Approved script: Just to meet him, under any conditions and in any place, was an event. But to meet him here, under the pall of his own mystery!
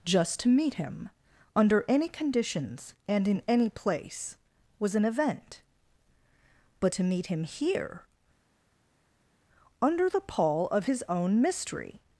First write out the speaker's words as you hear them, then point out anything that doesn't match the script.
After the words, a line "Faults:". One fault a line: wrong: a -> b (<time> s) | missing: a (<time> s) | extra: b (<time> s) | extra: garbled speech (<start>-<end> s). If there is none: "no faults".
Just to meet him, under any conditions and in any place, was an event. But to meet him here, under the pall of his own mystery!
Faults:
no faults